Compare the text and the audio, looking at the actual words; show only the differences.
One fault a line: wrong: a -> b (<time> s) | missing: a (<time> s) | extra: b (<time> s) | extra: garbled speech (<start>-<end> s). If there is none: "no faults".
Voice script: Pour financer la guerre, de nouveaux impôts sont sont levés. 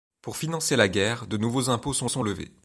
no faults